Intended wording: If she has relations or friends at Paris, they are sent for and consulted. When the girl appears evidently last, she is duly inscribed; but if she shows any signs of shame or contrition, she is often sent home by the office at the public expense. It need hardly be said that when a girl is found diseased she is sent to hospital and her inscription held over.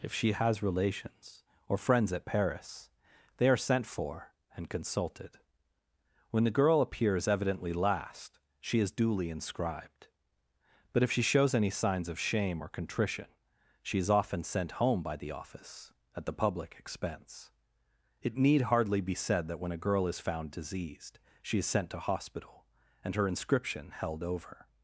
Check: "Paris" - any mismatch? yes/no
no